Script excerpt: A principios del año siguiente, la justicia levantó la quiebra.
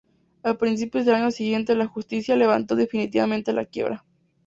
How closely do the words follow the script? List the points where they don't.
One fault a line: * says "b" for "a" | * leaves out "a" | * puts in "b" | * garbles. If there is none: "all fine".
* puts in "definitivamente"